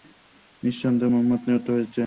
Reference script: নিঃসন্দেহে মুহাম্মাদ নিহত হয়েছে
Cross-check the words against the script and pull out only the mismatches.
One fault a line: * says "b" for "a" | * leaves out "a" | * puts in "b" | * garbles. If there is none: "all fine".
all fine